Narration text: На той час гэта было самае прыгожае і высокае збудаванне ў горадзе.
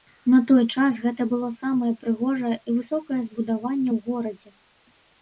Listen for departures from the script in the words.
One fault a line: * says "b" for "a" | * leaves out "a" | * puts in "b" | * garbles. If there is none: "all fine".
all fine